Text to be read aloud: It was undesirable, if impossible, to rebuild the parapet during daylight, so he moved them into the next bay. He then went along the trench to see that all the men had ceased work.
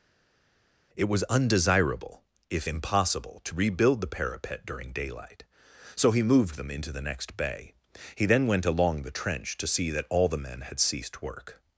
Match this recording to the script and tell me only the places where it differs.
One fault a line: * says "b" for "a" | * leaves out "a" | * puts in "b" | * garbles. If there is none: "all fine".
all fine